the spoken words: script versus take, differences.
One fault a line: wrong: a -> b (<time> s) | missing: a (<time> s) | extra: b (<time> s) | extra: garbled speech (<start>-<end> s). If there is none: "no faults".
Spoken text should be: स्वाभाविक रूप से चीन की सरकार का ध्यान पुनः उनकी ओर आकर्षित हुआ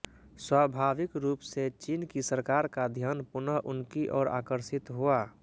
no faults